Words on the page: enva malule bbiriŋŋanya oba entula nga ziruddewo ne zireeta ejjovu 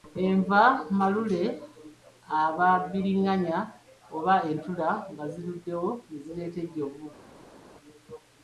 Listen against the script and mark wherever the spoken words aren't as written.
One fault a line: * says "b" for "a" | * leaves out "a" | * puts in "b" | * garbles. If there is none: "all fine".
* puts in "aba"